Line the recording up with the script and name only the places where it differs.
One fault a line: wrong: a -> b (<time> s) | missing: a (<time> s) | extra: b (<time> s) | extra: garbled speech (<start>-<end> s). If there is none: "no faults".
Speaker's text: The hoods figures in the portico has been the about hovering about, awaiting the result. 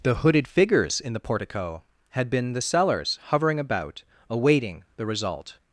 wrong: hoods -> hooded (0.1 s)
wrong: has -> had (2.1 s)
wrong: about -> sellers (2.6 s)